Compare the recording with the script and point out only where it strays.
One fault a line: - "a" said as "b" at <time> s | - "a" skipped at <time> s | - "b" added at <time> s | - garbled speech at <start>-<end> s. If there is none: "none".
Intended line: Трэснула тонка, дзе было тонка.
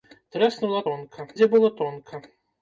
none